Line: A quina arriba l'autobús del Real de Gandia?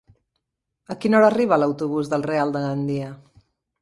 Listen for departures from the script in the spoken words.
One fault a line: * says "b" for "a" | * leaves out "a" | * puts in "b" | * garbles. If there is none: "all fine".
* puts in "hora"